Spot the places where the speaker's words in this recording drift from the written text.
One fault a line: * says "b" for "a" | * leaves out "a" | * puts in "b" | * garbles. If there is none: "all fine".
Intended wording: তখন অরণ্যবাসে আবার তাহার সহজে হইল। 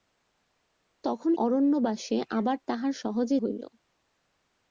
all fine